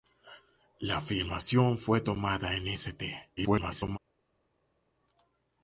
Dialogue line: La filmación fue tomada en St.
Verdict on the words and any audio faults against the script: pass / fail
fail